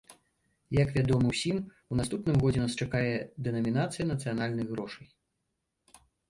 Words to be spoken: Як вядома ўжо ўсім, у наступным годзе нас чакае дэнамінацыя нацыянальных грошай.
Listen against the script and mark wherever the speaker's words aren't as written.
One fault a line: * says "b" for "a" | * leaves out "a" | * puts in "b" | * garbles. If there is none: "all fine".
* leaves out "ўжо"